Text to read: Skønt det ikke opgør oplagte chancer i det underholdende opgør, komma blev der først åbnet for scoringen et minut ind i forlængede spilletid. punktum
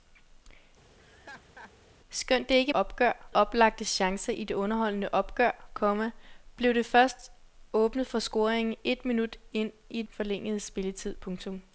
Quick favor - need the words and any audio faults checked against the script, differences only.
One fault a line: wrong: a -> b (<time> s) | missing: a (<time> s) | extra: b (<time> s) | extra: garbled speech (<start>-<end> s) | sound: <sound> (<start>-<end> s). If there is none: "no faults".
sound: laugh (1.0-1.7 s)